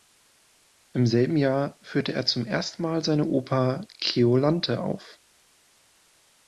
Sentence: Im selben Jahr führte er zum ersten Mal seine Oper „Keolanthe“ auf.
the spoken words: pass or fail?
pass